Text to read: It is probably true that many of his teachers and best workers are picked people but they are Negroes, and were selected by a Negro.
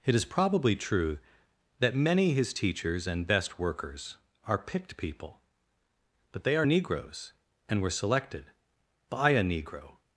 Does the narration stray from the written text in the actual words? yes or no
yes